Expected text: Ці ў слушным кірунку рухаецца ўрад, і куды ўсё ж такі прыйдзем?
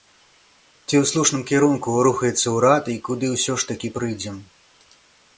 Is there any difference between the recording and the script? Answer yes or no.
no